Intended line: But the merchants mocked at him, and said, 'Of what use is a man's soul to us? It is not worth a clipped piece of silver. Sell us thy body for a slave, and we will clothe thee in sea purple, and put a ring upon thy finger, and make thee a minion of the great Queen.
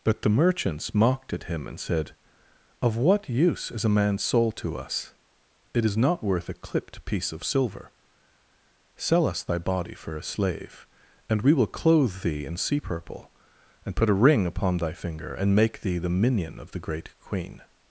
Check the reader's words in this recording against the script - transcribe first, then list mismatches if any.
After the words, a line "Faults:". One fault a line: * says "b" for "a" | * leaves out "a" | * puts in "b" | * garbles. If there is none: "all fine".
But the merchants mocked at him, and said, 'Of what use is a man's soul to us? It is not worth a clipped piece of silver. Sell us thy body for a slave, and we will clothe thee in sea purple, and put a ring upon thy finger, and make thee the minion of the great Queen.
Faults:
* says "the" for "a"